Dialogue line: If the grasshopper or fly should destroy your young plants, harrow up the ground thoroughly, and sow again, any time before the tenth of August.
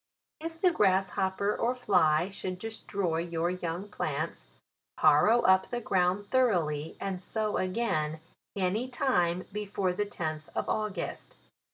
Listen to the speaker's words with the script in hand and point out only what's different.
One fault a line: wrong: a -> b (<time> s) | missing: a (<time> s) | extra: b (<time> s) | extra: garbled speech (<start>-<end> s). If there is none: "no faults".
no faults